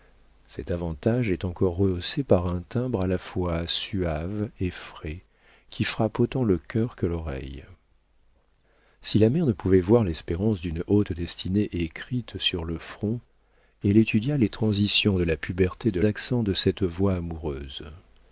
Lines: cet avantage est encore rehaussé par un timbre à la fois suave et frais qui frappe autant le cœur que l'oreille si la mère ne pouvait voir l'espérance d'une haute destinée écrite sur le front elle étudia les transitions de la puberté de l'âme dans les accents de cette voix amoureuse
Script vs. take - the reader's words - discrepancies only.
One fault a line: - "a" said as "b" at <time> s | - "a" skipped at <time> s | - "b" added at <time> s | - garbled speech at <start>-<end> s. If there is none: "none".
- "l'âme dans les" skipped at 16.0 s